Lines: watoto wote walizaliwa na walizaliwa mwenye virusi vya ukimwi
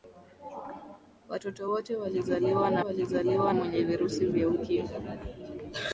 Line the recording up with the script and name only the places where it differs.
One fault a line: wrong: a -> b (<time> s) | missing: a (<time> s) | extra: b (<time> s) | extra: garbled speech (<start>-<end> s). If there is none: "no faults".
no faults